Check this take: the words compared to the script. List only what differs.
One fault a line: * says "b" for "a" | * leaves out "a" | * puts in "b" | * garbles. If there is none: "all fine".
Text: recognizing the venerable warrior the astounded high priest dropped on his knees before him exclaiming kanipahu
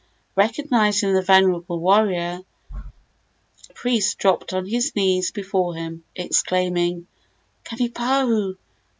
* leaves out "the astounded high"